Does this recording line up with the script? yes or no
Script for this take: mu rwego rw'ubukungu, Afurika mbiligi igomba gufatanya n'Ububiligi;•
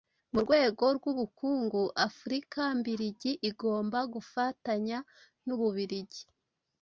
yes